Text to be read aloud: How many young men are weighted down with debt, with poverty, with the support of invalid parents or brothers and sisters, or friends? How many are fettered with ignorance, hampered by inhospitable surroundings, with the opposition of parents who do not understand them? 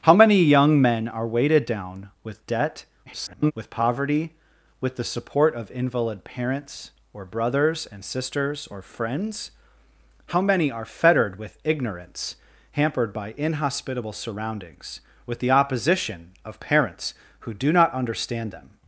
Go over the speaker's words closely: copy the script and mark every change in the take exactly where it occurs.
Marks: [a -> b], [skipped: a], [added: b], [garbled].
How many young men are weighted down with debt, [garbled] with poverty, with the support of invalid parents or brothers and sisters, or friends? How many are fettered with ignorance, hampered by inhospitable surroundings, with the opposition of parents who do not understand them?